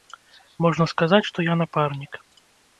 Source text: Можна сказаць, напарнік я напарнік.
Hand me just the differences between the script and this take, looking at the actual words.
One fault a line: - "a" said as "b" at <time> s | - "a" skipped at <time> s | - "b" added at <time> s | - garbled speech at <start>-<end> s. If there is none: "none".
- "напарнік" said as "што" at 1.3 s